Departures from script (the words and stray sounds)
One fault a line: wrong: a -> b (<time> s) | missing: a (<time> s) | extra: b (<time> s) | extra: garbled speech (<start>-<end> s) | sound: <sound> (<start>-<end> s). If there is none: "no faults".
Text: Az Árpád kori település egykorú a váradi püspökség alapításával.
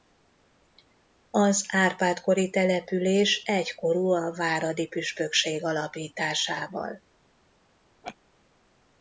sound: laugh (8.0-8.2 s)